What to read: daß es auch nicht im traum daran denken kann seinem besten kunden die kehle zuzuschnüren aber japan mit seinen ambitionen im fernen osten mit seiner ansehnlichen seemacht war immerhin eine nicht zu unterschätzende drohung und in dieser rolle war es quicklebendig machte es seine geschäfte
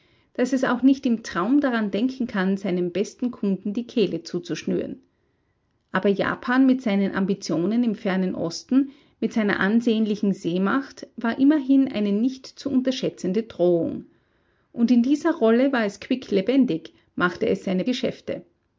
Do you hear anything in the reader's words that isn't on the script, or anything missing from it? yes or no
no